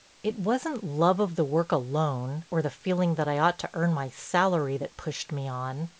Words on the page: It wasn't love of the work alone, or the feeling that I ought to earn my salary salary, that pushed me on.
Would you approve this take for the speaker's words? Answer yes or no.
no